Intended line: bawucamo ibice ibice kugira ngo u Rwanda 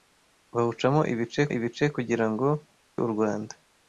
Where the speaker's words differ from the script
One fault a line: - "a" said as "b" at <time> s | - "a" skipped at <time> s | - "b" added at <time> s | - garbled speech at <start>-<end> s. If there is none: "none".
none